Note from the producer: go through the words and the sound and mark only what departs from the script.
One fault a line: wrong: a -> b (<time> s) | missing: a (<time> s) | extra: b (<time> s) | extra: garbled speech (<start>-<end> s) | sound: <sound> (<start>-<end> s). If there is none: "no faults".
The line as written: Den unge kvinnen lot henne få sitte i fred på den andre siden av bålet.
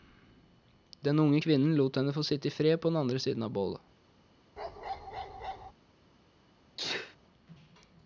sound: bark (4.6-5.7 s)
sound: sneeze (6.8-7.2 s)